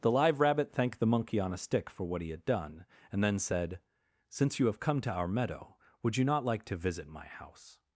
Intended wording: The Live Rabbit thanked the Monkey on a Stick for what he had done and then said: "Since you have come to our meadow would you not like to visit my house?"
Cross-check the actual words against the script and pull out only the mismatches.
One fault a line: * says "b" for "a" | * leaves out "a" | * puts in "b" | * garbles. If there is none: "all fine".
all fine